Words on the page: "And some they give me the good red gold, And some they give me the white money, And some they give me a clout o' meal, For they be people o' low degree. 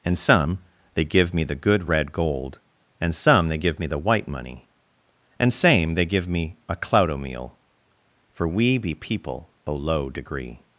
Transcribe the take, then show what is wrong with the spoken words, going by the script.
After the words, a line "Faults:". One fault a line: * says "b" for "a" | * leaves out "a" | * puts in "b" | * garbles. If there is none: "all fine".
"And some they give me the good red gold, And some they give me the white money, And same they give me a clout o' meal, For we be people o' low degree.
Faults:
* says "same" for "some"
* says "we" for "they"